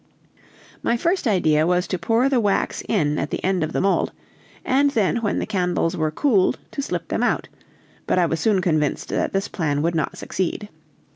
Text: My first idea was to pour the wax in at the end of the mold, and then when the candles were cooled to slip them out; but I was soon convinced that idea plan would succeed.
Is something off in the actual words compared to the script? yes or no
yes